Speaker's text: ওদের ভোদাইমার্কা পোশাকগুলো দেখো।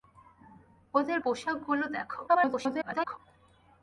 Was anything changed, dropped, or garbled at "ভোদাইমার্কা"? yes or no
yes